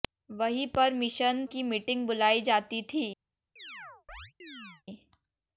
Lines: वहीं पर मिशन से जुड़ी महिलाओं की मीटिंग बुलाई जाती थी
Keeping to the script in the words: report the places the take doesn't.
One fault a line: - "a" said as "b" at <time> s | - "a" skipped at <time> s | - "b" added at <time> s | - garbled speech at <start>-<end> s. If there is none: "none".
- "से जुड़ी महिलाओं" skipped at 1.4 s